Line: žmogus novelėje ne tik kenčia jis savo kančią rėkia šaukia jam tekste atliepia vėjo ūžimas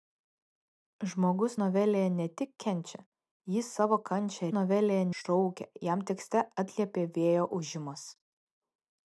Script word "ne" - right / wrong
right